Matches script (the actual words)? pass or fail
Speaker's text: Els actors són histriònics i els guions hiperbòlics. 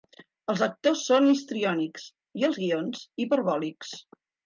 pass